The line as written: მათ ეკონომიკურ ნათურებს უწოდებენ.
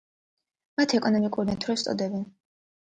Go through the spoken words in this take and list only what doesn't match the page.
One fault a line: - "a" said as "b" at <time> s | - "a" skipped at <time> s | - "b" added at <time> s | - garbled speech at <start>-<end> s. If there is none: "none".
none